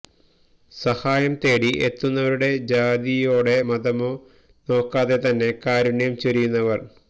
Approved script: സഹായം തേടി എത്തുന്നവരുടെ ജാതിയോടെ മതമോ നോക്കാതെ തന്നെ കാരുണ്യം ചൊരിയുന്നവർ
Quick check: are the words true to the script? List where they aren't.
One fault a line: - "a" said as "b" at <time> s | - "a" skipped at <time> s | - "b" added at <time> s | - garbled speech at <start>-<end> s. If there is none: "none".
none